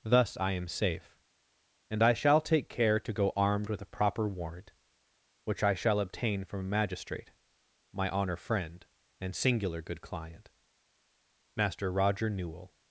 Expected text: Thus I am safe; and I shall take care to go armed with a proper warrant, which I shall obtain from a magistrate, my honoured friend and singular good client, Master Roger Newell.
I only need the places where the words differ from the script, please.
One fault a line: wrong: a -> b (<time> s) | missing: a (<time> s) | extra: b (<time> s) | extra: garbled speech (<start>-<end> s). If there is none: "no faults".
wrong: honoured -> honour (8.1 s)